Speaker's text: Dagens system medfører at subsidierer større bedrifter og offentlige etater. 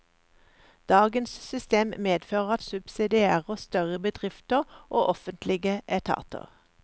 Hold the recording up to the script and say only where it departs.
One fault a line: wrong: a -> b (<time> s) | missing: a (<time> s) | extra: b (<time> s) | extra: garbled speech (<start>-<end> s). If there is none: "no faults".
no faults